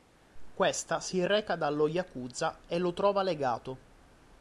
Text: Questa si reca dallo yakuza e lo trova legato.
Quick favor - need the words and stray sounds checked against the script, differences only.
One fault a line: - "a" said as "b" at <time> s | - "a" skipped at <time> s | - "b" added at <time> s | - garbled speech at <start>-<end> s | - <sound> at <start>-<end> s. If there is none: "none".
none